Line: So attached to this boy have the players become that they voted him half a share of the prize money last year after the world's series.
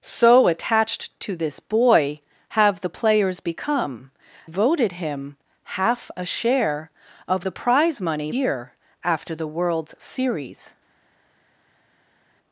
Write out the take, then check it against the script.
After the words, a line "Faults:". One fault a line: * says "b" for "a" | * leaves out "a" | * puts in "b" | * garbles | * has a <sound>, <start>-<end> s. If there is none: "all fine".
So attached to this boy have the players become voted him half a share of the prize money year after the world's series.
Faults:
* leaves out "that they"
* leaves out "last"